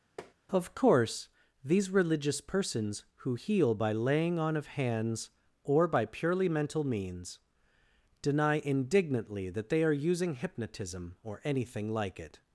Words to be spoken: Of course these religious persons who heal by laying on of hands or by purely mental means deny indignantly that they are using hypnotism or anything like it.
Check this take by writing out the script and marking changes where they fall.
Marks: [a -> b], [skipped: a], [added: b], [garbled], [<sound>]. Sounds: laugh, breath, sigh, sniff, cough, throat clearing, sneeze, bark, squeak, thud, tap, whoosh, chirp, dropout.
[tap] Of course these religious persons who heal by laying on of hands or by purely mental means deny indignantly that they are using hypnotism or anything like it.